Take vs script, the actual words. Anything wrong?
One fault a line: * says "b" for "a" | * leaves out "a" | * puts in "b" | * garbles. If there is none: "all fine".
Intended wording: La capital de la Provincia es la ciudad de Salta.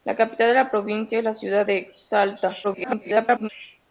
* garbles